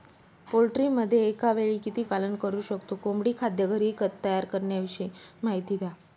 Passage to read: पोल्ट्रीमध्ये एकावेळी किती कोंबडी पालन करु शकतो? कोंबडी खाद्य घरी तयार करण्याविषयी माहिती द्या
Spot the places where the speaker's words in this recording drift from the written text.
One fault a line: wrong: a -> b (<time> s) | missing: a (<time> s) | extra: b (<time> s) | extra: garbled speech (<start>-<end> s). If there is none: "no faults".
missing: कोंबडी (2.0 s)